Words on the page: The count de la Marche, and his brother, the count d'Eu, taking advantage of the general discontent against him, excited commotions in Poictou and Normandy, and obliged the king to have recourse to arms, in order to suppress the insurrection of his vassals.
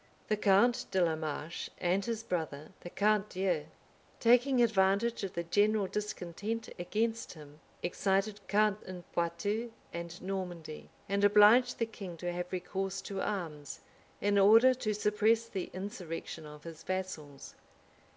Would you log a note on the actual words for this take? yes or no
yes